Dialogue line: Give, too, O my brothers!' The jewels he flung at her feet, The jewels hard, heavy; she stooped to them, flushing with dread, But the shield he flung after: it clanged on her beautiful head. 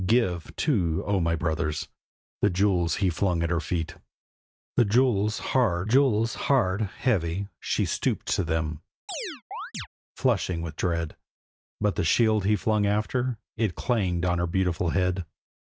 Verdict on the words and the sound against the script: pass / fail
fail